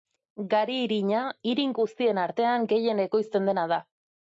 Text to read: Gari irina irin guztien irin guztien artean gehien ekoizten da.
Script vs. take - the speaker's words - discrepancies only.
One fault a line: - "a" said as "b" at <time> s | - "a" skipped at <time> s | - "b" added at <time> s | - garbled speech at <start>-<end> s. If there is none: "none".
- "irin guztien" skipped at 2.2 s
- "dena" added at 3.5 s